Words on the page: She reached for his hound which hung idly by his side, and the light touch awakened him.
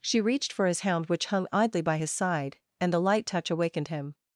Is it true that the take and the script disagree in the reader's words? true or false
false